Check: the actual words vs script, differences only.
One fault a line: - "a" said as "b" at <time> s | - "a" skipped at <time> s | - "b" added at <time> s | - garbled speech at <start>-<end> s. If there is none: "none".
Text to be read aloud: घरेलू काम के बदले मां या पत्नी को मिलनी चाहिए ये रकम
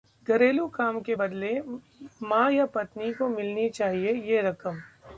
none